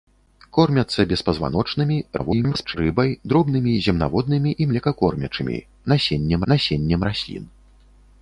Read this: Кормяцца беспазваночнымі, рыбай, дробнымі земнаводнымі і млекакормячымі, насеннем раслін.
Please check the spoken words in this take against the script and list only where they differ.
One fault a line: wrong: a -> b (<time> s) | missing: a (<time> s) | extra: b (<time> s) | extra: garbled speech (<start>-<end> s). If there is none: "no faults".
extra: garbled speech (2.2-2.8 s)
extra: насеннем (6.5 s)